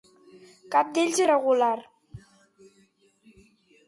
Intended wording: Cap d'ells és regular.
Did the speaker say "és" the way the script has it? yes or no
no